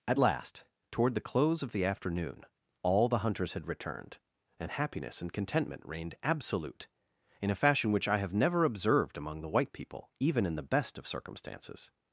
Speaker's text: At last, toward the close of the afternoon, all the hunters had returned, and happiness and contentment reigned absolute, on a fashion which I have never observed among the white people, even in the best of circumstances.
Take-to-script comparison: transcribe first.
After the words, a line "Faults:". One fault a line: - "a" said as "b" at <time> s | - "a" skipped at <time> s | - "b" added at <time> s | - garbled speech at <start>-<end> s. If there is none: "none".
At last, toward the close of the afternoon, all the hunters had returned, and happiness and contentment reigned absolute, in a fashion which I have never observed among the white people, even in the best of circumstances.
Faults:
- "on" said as "in" at 7.4 s